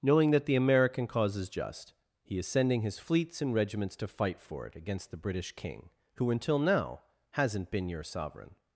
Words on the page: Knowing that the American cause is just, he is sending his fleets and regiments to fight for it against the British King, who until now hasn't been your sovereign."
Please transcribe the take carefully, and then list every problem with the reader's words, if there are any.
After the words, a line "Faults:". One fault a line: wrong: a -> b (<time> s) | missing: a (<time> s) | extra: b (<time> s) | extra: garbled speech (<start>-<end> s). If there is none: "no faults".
Knowing that the American cause is just, he is sending his fleets and regiments to fight for it against the British King, who until now hasn't been your sovereign."
Faults:
no faults